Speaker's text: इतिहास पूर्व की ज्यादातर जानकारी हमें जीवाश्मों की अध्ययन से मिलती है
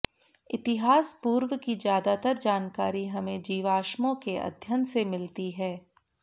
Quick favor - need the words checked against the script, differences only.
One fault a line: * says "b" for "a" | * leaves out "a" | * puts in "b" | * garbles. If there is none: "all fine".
* says "के" for "की"